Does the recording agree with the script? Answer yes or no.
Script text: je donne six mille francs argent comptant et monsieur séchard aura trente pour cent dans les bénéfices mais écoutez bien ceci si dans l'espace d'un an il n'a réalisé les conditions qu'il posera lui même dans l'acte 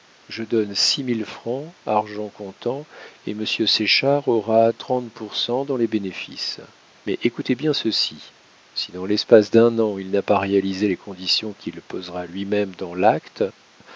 no